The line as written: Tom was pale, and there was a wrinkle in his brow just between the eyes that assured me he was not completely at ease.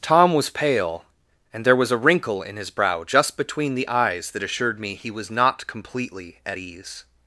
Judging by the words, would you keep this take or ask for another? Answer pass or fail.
pass